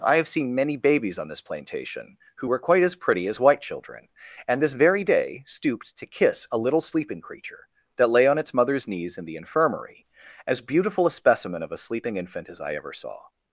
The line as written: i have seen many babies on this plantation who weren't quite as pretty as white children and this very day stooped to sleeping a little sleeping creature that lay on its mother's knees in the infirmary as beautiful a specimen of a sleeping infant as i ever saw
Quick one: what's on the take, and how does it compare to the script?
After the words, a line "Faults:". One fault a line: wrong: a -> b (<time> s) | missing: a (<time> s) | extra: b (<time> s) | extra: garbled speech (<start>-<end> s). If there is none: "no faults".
i have seen many babies on this plantation who were quite as pretty as white children and this very day stooped to kiss a little sleeping creature that lay on its mother's knees in the infirmary as beautiful a specimen of a sleeping infant as i ever saw
Faults:
wrong: weren't -> were (2.4 s)
wrong: sleeping -> kiss (6.1 s)